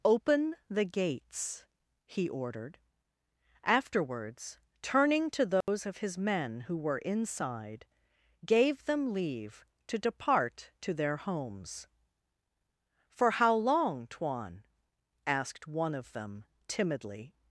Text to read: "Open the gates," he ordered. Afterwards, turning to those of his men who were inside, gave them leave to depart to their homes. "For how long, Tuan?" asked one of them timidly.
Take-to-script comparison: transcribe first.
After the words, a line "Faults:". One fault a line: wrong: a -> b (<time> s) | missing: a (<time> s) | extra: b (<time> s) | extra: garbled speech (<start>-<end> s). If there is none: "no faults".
"Open the gates," he ordered. Afterwards, turning to those of his men who were inside, gave them leave to depart to their homes. "For how long, Tuan?" asked one of them timidly.
Faults:
no faults